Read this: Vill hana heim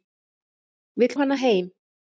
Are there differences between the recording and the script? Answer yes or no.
no